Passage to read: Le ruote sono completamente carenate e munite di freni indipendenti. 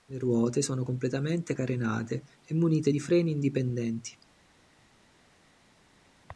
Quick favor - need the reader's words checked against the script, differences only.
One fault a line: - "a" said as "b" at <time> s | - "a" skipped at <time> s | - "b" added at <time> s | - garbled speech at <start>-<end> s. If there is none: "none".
none